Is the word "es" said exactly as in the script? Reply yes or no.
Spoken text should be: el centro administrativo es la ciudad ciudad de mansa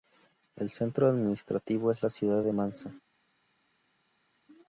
yes